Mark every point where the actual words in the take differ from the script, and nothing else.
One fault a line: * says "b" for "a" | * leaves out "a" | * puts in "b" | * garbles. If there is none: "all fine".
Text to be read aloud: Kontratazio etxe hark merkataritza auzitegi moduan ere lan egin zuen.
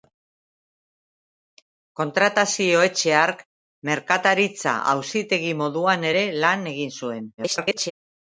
* garbles